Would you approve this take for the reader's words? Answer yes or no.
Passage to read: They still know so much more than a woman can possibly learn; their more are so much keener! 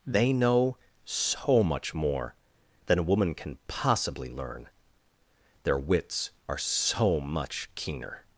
no